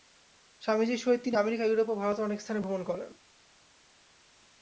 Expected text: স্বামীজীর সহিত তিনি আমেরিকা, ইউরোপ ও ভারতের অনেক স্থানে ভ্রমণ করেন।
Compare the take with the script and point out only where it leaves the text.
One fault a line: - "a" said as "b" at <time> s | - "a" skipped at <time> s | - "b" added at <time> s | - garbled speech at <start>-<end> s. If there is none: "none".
none